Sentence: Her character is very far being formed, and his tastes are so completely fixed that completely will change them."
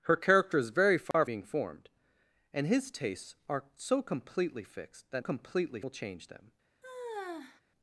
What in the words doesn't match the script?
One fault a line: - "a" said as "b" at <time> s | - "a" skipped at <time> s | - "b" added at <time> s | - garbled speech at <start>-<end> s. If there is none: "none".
none